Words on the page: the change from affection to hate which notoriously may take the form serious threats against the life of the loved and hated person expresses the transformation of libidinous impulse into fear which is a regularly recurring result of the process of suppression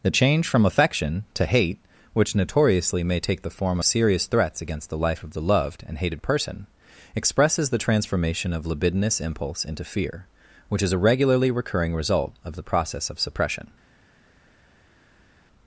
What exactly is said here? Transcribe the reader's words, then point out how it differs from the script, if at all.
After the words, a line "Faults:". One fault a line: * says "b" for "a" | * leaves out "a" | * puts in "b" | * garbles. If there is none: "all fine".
the change from affection to hate which notoriously may take the form serious threats against the life of the loved and hated person expresses the transformation of libidinous impulse into fear which is a regularly recurring result of the process of suppression
Faults:
all fine